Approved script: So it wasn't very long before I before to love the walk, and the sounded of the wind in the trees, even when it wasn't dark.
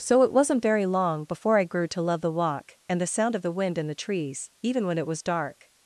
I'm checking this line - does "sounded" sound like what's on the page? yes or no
no